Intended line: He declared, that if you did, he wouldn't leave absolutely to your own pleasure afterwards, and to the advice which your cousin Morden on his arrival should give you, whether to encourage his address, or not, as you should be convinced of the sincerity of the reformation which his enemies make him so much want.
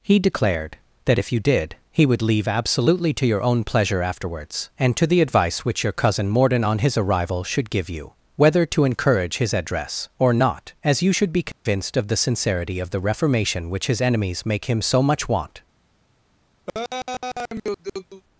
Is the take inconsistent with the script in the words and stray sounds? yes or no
yes